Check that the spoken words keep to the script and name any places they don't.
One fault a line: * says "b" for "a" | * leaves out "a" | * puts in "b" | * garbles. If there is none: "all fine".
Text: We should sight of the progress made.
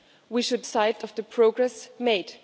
all fine